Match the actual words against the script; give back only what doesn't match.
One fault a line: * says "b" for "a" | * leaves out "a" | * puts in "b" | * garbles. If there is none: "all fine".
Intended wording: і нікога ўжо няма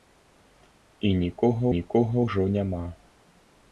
* puts in "нікога"